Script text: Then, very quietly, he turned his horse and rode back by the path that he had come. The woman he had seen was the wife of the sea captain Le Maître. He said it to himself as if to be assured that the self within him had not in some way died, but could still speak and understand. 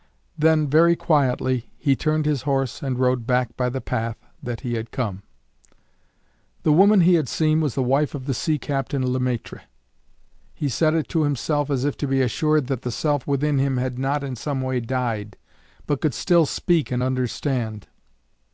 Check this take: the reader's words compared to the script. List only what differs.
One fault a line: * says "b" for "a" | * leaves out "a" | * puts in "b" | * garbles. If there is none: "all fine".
all fine